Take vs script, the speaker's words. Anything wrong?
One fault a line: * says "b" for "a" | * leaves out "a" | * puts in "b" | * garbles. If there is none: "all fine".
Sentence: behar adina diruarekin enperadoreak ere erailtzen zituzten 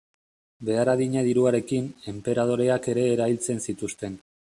all fine